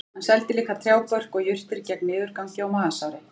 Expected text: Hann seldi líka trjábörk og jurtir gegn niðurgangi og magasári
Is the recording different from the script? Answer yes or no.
no